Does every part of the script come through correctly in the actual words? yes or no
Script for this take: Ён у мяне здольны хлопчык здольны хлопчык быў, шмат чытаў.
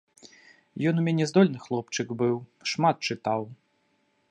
no